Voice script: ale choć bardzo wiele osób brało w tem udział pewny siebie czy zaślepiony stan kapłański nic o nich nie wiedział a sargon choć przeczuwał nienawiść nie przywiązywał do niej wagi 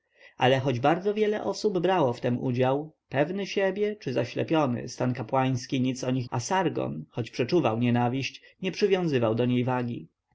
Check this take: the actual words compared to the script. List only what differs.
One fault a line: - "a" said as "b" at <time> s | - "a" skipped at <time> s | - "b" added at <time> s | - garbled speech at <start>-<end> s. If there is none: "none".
- "nie wiedział" skipped at 6.3 s